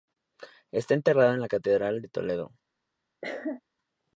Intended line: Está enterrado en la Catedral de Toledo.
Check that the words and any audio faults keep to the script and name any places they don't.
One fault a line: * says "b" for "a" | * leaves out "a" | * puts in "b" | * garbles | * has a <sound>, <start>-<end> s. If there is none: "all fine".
* has a cough, 3.2-3.6 s